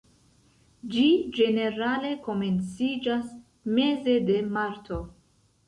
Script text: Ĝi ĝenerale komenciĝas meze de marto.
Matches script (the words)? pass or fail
pass